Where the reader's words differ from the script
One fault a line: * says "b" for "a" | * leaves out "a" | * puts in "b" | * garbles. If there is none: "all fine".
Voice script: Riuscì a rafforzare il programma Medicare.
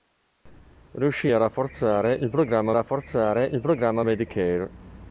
* puts in "rafforzare il programma"